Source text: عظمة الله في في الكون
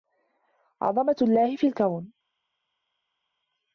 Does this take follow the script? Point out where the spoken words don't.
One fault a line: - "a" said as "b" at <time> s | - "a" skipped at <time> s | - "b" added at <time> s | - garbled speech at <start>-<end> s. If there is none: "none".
- "في" skipped at 1.7 s